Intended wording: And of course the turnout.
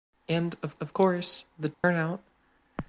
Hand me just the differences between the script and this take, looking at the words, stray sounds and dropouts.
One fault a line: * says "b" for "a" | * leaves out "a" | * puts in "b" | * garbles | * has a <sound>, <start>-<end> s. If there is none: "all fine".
* puts in "of"
* has a dropout, 1.7-1.8 s